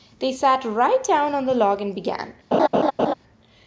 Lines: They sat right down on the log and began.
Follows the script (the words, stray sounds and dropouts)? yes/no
no